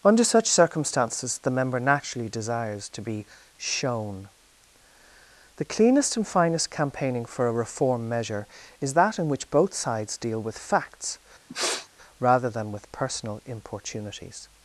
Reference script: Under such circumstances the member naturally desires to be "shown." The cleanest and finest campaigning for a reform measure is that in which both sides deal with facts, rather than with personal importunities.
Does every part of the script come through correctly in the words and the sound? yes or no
no